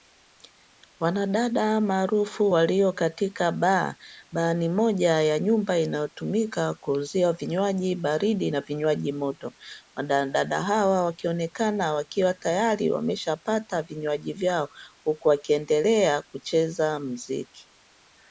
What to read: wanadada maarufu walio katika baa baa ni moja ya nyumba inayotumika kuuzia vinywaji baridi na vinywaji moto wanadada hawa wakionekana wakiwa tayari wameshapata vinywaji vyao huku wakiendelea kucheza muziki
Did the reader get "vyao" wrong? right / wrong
right